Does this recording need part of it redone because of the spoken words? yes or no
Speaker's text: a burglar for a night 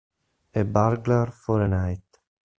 no